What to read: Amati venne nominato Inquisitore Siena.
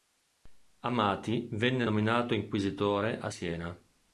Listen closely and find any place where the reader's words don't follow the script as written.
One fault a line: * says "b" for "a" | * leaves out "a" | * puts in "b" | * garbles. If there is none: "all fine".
* puts in "a"